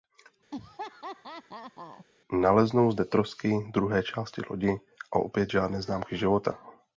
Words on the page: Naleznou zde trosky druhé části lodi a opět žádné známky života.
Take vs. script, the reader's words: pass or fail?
pass